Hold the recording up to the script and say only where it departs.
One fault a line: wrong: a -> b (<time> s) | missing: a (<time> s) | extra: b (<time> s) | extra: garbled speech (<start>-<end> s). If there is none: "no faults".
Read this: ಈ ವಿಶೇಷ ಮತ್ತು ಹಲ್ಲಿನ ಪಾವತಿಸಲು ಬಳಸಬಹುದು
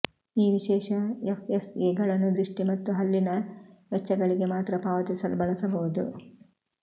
extra: ಎಫ್ಎಸ್ಎಗಳನ್ನು ದೃಷ್ಟಿ (1.2 s)
extra: ವೆಚ್ಚಗಳಿಗೆ ಮಾತ್ರ (3.9 s)